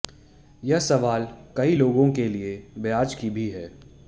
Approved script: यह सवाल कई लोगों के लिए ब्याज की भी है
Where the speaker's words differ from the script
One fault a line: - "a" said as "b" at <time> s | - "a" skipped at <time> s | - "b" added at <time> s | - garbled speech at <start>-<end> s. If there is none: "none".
none